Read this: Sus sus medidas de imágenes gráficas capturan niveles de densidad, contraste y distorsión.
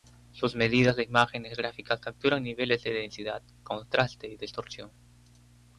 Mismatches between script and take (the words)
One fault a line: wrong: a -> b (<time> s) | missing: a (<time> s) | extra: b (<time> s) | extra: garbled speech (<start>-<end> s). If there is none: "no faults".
missing: sus (0.6 s)